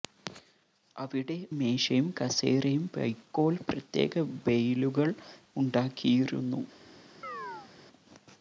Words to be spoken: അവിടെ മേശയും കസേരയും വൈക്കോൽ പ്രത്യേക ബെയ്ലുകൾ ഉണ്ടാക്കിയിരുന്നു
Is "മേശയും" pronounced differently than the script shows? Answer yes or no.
no